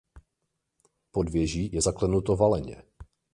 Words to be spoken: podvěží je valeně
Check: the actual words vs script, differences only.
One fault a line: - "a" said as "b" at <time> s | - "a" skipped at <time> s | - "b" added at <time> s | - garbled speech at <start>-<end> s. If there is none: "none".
- "zaklenuto" added at 1.8 s